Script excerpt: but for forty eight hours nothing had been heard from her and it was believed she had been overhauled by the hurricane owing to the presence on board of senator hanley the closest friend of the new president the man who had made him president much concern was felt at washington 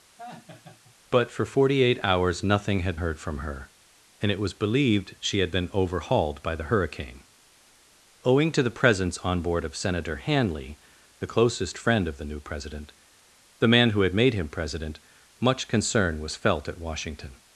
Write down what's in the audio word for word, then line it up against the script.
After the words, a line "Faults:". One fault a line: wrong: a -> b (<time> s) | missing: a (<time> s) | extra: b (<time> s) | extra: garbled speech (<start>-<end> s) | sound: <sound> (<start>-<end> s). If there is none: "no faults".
but for forty eight hours nothing had heard from her and it was believed she had been overhauled by the hurricane owing to the presence on board of senator hanley the closest friend of the new president the man who had made him president much concern was felt at washington
Faults:
sound: laugh (0.2-1.0 s)
missing: been (3.0 s)